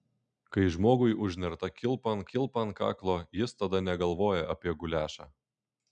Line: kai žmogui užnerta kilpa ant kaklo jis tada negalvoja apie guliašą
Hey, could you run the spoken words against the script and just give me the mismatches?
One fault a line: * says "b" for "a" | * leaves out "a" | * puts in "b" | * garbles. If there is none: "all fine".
* puts in "kilpa ant"